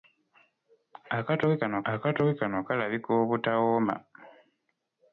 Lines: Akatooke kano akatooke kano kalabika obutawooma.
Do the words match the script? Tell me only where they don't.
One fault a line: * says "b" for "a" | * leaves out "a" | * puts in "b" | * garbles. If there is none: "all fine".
all fine